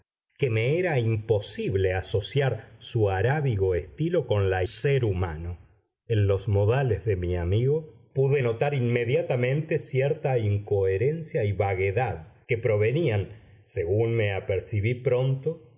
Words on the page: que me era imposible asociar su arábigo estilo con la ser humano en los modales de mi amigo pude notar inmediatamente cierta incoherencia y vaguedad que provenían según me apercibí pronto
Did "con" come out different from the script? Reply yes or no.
no